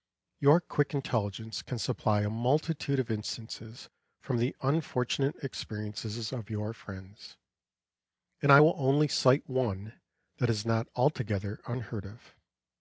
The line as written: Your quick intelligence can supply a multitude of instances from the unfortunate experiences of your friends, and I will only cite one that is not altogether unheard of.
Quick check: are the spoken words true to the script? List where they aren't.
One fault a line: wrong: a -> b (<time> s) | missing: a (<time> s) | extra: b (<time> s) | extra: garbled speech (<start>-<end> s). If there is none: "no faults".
no faults